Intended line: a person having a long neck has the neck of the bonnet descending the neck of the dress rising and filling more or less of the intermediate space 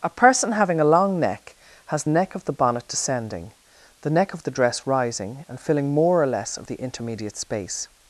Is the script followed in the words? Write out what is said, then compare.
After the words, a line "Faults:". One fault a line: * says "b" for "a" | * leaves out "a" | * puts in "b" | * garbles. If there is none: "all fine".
a person having a long neck has neck of the bonnet descending the neck of the dress rising and filling more or less of the intermediate space
Faults:
* leaves out "the"